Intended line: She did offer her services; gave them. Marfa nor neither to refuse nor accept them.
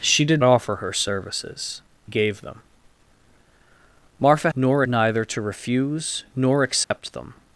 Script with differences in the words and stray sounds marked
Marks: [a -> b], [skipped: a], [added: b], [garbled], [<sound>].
She did offer her services; gave them. Marfa nor neither to refuse nor accept [dropout] them.